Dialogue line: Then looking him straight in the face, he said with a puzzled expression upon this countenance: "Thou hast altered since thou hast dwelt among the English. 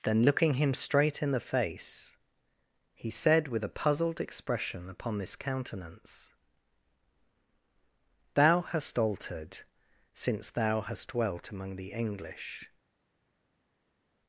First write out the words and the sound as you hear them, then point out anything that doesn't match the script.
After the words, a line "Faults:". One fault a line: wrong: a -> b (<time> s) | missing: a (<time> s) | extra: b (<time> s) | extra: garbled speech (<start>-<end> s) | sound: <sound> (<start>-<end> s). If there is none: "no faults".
Then looking him straight in the face, he said with a puzzled expression upon this countenance: "Thou hast altered since thou hast dwelt among the English.
Faults:
no faults